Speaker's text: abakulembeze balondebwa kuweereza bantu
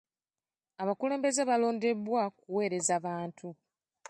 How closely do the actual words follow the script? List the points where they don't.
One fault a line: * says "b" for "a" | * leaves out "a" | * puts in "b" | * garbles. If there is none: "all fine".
all fine